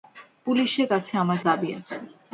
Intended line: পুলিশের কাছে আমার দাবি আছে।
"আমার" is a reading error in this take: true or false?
false